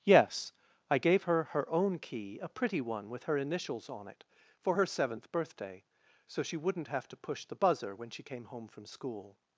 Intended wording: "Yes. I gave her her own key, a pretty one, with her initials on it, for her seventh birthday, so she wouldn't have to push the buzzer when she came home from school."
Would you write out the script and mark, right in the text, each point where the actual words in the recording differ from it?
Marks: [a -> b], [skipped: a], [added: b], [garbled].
"Yes. I gave her her own key, a pretty one, with her initials on it, for her seventh birthday, so she wouldn't have to push the buzzer when she came home from school."